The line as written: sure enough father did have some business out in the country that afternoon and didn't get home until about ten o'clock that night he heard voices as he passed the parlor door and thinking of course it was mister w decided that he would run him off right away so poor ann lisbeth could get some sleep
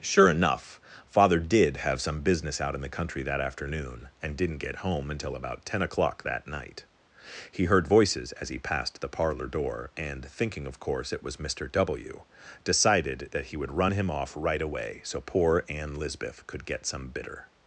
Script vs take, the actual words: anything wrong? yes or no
yes